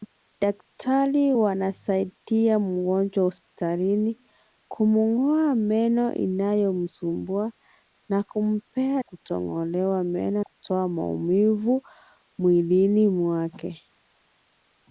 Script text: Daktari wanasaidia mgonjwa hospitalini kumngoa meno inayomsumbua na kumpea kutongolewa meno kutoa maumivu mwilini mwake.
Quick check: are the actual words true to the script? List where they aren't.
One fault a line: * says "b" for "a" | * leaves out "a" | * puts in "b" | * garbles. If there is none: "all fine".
all fine